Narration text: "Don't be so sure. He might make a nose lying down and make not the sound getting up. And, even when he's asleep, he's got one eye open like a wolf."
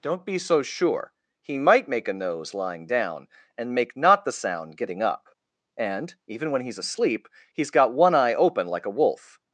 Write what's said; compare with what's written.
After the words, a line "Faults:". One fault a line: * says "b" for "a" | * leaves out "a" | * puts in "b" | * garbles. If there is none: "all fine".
"Don't be so sure. He might make a nose lying down and make not the sound getting up. And, even when he's asleep, he's got one eye open like a wolf."
Faults:
all fine